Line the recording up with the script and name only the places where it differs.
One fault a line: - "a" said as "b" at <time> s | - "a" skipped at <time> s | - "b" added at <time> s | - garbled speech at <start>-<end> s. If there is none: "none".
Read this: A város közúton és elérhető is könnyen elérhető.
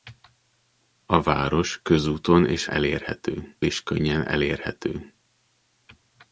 none